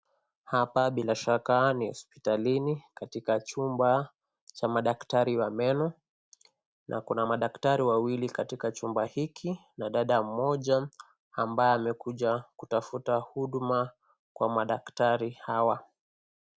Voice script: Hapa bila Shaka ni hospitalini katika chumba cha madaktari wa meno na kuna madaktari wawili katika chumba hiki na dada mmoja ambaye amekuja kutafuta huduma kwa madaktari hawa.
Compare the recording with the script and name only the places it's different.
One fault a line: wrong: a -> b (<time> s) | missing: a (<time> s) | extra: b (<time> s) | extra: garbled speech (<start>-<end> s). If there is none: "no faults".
no faults